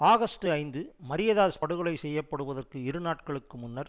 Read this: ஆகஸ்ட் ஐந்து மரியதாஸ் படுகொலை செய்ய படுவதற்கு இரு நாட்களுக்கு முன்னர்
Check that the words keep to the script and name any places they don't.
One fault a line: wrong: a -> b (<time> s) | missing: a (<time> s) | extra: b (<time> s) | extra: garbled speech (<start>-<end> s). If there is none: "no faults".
no faults